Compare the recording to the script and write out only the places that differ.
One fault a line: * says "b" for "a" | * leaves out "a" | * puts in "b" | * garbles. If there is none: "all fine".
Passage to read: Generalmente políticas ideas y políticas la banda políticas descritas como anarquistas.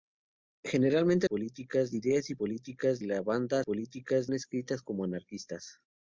all fine